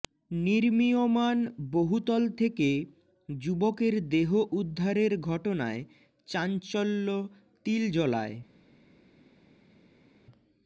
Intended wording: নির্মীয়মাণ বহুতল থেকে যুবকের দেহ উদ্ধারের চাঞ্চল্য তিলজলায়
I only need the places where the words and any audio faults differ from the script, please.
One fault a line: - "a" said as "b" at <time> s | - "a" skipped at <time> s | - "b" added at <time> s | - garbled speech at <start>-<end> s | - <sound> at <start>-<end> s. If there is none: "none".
- "ঘটনায়" added at 5.3 s